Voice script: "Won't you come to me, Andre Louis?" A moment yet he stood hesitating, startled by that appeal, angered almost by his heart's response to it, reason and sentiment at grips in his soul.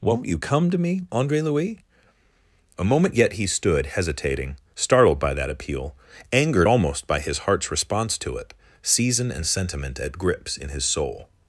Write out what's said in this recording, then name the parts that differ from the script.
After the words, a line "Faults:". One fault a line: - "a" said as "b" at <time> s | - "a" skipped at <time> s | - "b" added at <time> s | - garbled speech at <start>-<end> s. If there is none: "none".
"Won't you come to me, Andre Louis?" A moment yet he stood hesitating, startled by that appeal, angered almost by his heart's response to it, season and sentiment at grips in his soul.
Faults:
- "reason" said as "season" at 8.8 s